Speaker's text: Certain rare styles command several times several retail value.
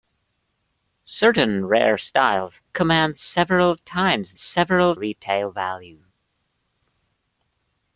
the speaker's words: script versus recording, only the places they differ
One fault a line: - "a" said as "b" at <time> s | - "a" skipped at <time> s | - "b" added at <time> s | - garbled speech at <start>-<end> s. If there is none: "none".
none